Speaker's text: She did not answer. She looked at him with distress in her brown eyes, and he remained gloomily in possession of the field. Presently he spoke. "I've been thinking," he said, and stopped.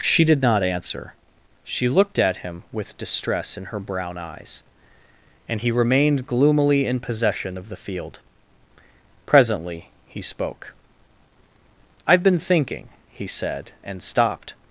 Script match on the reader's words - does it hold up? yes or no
yes